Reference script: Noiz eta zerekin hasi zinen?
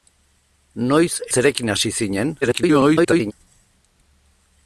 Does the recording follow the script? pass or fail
fail